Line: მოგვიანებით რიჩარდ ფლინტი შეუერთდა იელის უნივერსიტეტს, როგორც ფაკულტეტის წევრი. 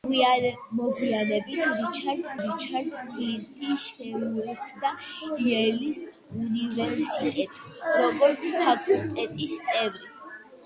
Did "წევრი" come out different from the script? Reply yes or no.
no